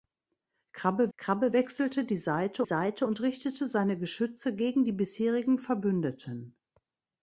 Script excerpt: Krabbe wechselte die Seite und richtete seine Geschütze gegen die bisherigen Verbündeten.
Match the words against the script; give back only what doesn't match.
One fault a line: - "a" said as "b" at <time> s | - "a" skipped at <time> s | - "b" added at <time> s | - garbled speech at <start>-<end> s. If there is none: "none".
- "krabbe" added at 1.2 s
- "Seite" added at 2.6 s